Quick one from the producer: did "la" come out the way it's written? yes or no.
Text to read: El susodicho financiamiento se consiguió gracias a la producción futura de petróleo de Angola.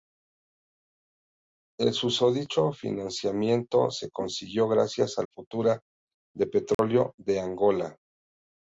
no